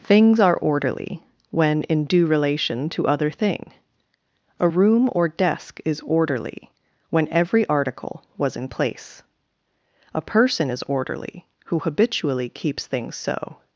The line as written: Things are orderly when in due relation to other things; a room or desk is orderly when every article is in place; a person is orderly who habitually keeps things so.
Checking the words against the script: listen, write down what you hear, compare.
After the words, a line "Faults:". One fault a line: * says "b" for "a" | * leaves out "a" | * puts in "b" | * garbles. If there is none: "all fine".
Things are orderly when in due relation to other thing; a room or desk is orderly when every article was in place; a person is orderly who habitually keeps things so.
Faults:
* says "thing" for "things"
* says "was" for "is"